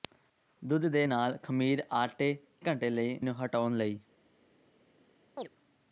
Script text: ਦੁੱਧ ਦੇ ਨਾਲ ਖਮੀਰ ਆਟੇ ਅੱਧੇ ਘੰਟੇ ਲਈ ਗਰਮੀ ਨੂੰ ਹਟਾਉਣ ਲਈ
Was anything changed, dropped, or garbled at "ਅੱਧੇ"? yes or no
yes